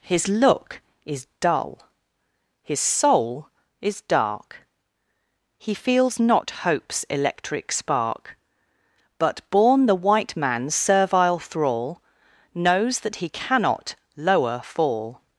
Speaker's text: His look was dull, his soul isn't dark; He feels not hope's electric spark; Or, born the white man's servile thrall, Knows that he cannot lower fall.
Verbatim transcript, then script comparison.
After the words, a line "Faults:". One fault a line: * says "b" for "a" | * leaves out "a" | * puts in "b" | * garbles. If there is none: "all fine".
His look is dull, his soul is dark; He feels not hope's electric spark; But, born the white man's servile thrall, Knows that he cannot lower fall.
Faults:
* says "is" for "was"
* says "is" for "isn't"
* says "But" for "Or"